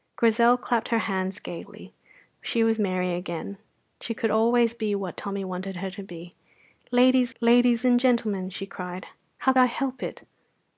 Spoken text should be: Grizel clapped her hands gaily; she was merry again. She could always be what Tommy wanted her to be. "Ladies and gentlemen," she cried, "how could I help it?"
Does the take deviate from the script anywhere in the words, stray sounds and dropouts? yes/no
yes